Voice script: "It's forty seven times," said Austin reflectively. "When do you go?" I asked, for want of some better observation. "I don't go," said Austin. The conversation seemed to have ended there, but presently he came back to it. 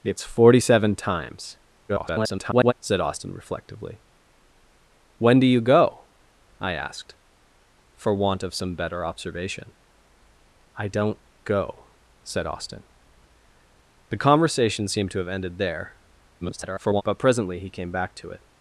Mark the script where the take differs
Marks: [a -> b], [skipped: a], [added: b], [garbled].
"It's forty seven times," [garbled] said Austin reflectively. "When do you go?" I asked, for want of some better observation. "I don't go," said Austin. The conversation seemed to have ended there, [garbled] but presently he came back to it.